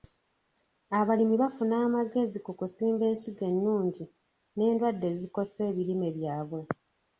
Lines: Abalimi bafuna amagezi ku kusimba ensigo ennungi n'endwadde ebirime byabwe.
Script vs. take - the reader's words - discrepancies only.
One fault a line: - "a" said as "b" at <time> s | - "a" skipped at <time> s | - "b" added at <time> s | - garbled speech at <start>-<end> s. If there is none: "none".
- "ezikosa" added at 5.1 s